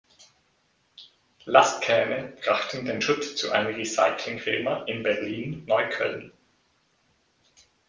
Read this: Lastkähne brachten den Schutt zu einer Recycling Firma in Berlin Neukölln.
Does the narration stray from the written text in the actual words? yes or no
no